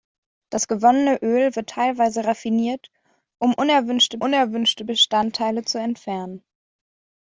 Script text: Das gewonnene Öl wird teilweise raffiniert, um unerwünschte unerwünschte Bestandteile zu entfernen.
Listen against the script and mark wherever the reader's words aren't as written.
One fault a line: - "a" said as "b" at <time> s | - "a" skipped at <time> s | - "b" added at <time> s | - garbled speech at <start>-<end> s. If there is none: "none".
none